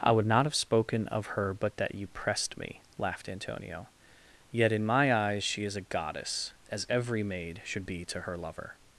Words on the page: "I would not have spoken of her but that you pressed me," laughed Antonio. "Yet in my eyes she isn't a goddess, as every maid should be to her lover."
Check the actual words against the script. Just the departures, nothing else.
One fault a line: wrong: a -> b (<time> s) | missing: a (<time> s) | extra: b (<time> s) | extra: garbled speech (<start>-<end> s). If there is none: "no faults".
wrong: isn't -> is (5.6 s)